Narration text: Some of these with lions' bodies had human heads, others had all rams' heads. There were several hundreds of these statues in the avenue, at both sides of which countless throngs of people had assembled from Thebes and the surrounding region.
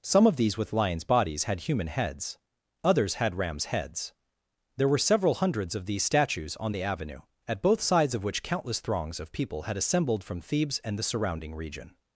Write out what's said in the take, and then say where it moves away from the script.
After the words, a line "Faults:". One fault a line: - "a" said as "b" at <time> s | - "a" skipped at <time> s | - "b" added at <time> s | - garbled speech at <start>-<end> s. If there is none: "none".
Some of these with lions' bodies had human heads, others had rams' heads. There were several hundreds of these statues on the avenue, at both sides of which countless throngs of people had assembled from Thebes and the surrounding region.
Faults:
- "all" skipped at 3.4 s
- "in" said as "on" at 6.6 s